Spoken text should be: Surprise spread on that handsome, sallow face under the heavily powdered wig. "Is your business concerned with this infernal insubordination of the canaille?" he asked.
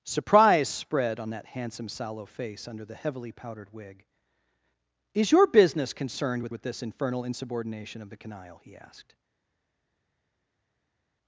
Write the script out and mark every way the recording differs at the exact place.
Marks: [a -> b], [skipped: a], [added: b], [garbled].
Surprise spread on that handsome, sallow face under the heavily powdered wig. "Is your business concerned with [added: with] this infernal insubordination of the canaille?" he asked.